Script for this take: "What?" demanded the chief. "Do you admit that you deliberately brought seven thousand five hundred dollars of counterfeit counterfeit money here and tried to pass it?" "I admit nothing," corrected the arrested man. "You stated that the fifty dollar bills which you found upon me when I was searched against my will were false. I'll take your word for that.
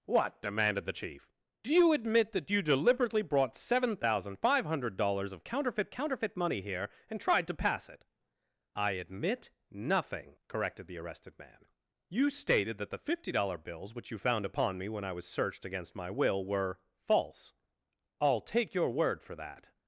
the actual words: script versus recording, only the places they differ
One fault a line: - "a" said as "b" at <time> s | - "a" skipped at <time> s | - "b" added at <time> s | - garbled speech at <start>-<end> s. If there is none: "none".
none